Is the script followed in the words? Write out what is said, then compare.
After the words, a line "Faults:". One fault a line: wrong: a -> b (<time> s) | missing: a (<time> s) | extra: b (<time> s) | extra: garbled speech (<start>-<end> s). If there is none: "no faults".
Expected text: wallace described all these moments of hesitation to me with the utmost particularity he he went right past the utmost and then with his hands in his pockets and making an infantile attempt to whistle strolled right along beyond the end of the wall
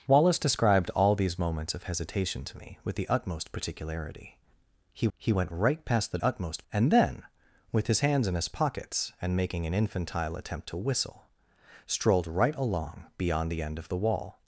wallace described all these moments of hesitation to me with the utmost particularity he he went right past the utmost and then with his hands in his pockets and making an infantile attempt to whistle strolled right along beyond the end of the wall
Faults:
no faults